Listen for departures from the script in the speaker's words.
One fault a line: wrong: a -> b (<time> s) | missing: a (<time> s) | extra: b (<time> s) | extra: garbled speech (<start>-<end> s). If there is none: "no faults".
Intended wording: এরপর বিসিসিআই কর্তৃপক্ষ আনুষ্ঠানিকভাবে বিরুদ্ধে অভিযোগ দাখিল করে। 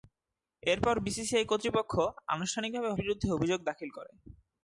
no faults